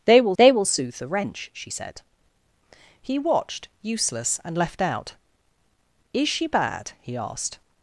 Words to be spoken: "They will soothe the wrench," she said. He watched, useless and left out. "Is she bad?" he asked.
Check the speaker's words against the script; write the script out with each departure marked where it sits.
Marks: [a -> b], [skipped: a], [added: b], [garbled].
"They will [added: they will] soothe the wrench," she said. He watched, useless and left out. "Is she bad?" he asked.